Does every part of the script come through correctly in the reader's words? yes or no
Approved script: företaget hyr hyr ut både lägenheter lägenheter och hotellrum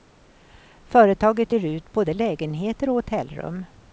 no